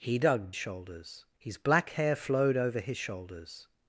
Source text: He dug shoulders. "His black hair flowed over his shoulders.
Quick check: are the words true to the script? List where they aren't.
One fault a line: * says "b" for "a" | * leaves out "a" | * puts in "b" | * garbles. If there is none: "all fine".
all fine